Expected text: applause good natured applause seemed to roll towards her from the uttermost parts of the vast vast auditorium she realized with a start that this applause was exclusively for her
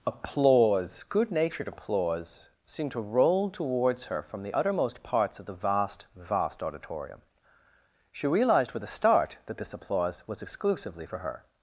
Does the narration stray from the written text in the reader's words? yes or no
no